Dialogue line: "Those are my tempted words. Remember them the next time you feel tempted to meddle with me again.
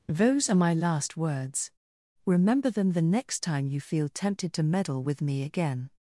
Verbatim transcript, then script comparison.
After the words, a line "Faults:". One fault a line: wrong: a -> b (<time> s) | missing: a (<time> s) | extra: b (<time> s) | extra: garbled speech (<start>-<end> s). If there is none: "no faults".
"Those are my last words. Remember them the next time you feel tempted to meddle with me again.
Faults:
wrong: tempted -> last (0.7 s)